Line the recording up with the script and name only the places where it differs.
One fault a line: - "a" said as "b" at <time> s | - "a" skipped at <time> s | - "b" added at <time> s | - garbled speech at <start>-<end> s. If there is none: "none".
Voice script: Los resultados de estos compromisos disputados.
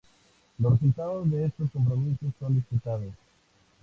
- "son" added at 2.4 s